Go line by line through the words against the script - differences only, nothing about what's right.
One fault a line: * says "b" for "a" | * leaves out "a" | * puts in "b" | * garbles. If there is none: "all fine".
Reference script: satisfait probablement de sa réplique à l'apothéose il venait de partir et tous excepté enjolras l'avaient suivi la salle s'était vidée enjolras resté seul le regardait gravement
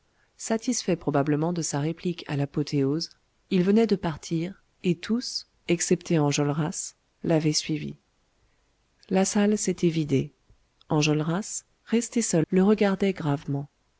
all fine